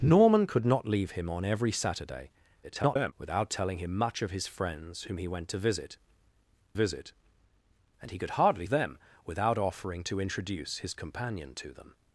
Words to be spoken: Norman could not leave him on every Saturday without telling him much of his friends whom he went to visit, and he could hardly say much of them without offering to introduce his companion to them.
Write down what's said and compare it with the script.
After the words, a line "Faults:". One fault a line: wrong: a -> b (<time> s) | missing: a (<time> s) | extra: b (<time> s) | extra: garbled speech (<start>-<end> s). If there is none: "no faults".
Norman could not leave him on every Saturday [garbled] without telling him much of his friends whom he went to visit visit, and he could hardly them without offering to introduce his companion to them.
Faults:
extra: garbled speech (2.6-3.1 s)
extra: visit (6.7 s)
missing: say much of (8.7 s)